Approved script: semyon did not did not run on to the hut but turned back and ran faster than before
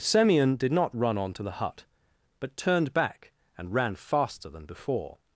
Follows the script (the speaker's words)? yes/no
no